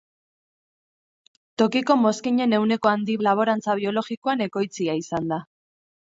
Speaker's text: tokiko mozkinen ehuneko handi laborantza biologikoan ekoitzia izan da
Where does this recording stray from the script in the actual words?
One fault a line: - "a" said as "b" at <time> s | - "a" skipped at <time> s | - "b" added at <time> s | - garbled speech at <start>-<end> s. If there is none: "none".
none